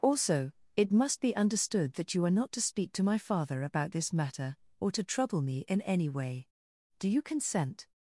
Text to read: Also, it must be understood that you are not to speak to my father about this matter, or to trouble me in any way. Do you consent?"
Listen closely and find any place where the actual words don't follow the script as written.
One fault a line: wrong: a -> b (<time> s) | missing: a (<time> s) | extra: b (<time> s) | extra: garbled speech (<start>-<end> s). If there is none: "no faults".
no faults